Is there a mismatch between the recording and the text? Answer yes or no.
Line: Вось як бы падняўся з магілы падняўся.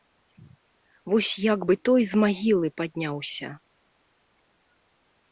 yes